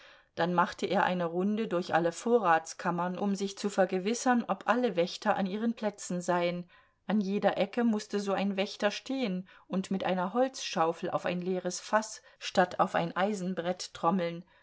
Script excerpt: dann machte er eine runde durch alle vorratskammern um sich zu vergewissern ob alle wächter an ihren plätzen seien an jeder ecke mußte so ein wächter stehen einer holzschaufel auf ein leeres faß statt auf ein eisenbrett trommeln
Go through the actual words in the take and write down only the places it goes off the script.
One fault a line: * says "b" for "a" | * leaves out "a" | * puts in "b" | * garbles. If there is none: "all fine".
* puts in "und mit"